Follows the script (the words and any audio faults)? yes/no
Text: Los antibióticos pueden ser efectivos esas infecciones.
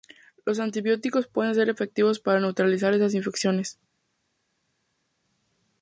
no